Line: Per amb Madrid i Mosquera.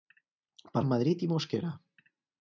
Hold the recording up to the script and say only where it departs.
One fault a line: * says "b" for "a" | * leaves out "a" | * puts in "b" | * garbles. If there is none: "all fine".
all fine